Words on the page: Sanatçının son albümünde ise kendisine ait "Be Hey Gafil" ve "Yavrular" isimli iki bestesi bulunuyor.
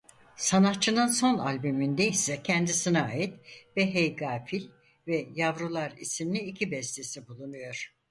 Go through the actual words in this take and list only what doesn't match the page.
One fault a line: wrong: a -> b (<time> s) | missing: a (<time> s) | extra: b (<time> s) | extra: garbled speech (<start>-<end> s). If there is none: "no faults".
no faults